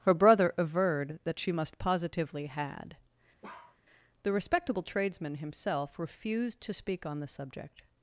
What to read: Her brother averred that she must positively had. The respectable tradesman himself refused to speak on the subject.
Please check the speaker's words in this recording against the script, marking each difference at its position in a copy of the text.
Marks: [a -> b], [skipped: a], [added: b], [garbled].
Her brother averred that she must positively had. The respectable tradesman himself refused to speak on the subject.